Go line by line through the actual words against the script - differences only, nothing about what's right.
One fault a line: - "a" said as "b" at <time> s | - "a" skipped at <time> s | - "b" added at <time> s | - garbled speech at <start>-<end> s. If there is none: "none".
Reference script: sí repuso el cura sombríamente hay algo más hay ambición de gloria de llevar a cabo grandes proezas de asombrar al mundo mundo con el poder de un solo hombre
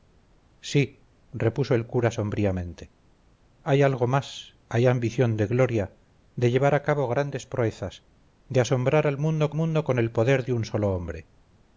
none